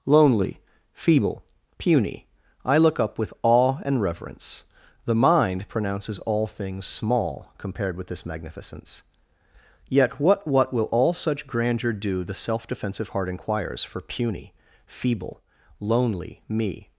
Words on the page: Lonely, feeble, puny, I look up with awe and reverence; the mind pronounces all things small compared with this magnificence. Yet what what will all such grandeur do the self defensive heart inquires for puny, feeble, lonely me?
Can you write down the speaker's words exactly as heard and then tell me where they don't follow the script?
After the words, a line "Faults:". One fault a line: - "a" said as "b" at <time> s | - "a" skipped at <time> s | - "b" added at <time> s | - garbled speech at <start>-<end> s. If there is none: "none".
Lonely, feeble, puny, I look up with awe and reverence; the mind pronounces all things small compared with this magnificence. Yet what what will all such grandeur do the self defensive heart inquires for puny, feeble, lonely me?
Faults:
none